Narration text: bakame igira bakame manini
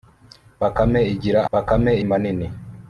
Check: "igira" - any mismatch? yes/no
no